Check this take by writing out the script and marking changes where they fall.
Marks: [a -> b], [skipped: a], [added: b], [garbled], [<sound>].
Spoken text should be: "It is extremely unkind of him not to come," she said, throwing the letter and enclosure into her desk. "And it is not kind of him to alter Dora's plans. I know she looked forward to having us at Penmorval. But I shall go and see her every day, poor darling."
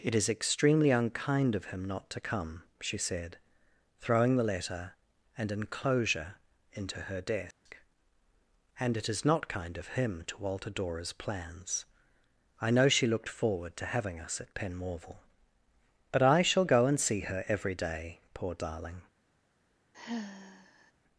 "It is extremely unkind of him not to come," she said, throwing the letter and enclosure into her desk. [dropout] "And it is not kind of him to alter Dora's plans. I know she looked forward to having us at Penmorval. But I shall go and see her every day, poor darling." [sigh]